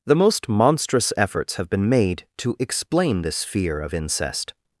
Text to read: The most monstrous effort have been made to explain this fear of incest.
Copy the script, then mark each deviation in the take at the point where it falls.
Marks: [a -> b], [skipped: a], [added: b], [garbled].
The most monstrous [effort -> efforts] have been made to explain this fear of incest.